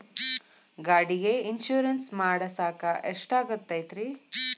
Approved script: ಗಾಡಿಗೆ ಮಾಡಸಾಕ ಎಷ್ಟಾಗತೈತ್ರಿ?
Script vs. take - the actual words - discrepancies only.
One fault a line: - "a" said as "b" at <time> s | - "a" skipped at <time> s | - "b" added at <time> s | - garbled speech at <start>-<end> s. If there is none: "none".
- "ಇನ್ಶೂರೆನ್ಸ್" added at 1.5 s